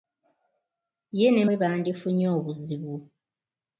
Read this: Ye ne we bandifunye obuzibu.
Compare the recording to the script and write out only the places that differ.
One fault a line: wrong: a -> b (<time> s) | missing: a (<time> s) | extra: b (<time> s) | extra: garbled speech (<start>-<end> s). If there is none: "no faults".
no faults